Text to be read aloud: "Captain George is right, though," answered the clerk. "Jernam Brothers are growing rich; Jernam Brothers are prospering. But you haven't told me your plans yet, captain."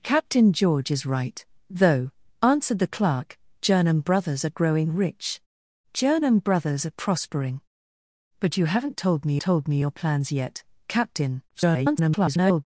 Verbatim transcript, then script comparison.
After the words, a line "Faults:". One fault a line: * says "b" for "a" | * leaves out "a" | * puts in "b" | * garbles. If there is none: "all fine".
"Captain George is right, though," answered the clerk. "Jernam Brothers are growing rich; Jernam Brothers are prospering. But you haven't told me told me your plans yet, captain." [garbled]
Faults:
* puts in "told me"
* garbles